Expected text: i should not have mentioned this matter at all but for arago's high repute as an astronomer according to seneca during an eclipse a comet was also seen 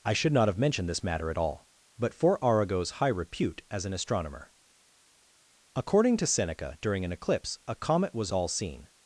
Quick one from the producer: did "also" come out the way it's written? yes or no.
no